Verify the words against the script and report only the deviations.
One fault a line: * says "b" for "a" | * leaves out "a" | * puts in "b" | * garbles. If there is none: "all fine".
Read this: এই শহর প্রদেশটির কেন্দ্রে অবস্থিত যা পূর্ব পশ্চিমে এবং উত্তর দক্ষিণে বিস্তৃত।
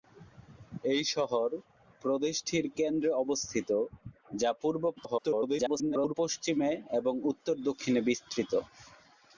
* garbles